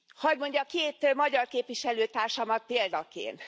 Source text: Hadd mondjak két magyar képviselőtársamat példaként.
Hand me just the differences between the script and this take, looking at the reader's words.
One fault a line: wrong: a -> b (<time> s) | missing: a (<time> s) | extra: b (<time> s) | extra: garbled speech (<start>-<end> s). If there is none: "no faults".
no faults